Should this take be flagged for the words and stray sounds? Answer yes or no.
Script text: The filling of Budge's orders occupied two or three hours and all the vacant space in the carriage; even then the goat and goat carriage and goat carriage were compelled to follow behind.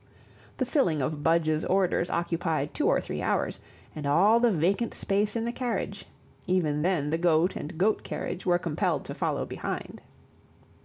yes